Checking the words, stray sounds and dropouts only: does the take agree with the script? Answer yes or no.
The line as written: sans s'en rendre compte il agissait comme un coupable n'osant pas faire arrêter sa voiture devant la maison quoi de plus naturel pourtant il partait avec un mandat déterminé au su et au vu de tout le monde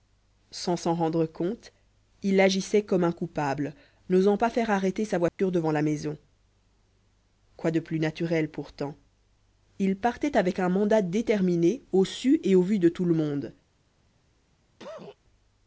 no